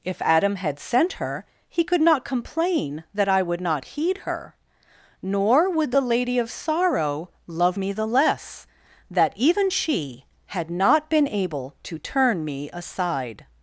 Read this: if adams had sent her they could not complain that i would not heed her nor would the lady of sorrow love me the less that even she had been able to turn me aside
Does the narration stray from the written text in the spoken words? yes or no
yes